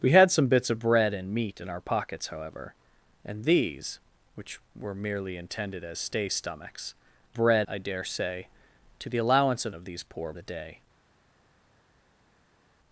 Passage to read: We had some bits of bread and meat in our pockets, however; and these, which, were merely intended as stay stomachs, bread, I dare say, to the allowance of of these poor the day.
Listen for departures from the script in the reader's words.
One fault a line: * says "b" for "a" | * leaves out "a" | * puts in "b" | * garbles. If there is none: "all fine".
all fine